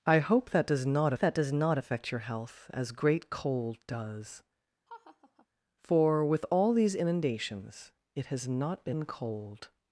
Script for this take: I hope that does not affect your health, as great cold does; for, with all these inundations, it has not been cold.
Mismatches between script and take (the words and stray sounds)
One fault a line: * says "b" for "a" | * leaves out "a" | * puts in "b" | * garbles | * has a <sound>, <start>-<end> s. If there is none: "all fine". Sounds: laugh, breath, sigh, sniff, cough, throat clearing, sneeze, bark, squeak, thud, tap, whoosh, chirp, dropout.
* puts in "that does not"
* has a laugh, 4.9-5.5 s